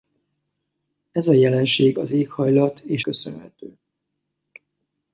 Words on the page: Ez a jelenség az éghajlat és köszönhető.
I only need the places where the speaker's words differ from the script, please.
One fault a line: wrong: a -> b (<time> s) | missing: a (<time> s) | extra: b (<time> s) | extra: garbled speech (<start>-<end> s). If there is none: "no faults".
no faults